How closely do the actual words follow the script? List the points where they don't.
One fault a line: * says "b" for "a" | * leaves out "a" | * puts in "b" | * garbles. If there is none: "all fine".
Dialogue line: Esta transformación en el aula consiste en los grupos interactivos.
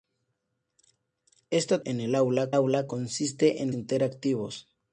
* leaves out "transformación"
* puts in "aula"
* leaves out "los grupos"